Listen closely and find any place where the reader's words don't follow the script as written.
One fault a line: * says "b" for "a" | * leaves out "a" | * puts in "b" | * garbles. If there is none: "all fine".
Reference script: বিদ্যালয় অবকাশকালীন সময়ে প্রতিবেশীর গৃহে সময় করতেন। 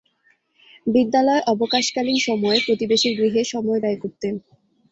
* puts in "ব্যয়"